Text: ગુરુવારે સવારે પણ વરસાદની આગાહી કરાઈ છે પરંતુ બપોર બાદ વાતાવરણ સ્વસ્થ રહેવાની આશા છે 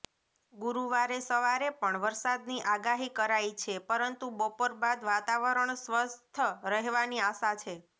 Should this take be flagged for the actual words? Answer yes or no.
no